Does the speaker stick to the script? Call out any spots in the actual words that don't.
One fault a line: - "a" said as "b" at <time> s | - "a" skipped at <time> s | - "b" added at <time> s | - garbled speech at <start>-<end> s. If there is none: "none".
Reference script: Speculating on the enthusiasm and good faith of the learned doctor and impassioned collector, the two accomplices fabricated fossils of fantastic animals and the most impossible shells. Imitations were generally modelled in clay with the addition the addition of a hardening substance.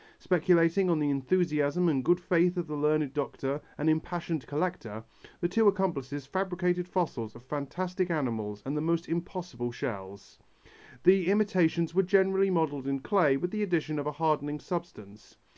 - "The" added at 11.0 s
- "the addition" skipped at 14.0 s